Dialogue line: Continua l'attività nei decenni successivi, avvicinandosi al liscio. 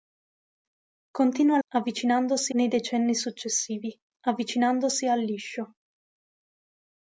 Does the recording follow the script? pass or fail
fail